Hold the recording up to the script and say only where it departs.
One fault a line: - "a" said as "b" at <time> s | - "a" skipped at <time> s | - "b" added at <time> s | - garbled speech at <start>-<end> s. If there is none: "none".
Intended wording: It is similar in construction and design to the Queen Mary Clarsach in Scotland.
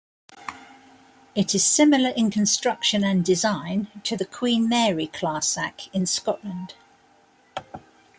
none